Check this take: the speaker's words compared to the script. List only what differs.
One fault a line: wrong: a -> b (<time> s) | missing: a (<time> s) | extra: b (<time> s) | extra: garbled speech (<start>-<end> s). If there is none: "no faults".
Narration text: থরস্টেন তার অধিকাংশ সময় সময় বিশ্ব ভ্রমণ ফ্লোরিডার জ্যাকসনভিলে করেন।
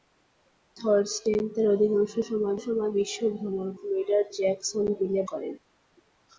no faults